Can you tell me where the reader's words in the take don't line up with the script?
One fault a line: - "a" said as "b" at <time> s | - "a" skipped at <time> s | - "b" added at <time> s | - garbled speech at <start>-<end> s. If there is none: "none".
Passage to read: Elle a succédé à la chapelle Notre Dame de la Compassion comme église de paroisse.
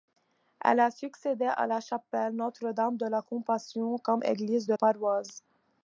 none